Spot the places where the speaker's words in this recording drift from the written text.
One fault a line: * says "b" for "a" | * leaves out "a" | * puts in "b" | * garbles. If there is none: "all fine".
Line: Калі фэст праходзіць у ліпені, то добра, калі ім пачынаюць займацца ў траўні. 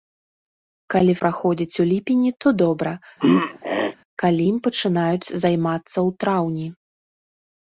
* leaves out "фэст"